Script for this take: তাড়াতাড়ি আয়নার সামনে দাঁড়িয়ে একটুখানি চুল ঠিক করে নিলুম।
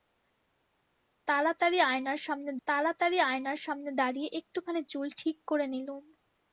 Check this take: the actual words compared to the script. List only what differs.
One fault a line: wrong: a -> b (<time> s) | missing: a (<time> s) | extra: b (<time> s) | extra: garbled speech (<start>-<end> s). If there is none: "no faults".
extra: তাড়াতাড়ি আয়নার সামনে (2.7 s)